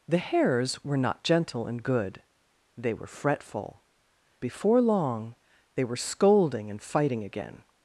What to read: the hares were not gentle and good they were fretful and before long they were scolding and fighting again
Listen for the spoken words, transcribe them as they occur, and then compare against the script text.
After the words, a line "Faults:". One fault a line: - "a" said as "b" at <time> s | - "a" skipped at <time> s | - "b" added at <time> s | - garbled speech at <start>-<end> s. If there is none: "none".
the hares were not gentle and good they were fretful before long they were scolding and fighting again
Faults:
- "and" skipped at 3.8 s